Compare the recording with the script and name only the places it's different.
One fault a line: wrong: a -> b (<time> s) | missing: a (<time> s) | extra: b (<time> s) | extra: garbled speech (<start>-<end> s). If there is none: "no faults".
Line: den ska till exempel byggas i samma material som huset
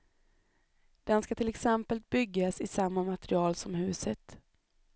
no faults